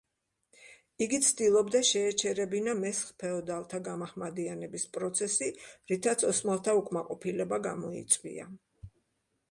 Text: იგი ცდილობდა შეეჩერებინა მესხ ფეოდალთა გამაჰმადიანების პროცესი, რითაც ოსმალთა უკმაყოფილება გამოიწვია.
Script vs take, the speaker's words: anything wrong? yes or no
no